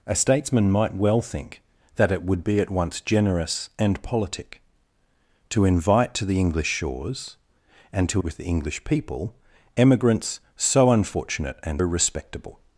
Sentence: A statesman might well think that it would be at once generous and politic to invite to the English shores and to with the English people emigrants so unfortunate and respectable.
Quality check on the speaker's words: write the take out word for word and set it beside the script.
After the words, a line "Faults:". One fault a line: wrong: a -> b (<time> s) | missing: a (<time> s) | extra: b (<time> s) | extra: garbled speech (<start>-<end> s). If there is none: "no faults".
A statesman might well think that it would be at once generous and politic to invite to the English shores and to with the English people emigrants so unfortunate and respectable.
Faults:
no faults